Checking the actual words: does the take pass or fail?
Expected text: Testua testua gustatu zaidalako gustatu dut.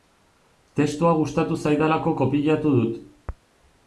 fail